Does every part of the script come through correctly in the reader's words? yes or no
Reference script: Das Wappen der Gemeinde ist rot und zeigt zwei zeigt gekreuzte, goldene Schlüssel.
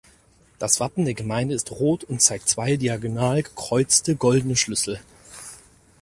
no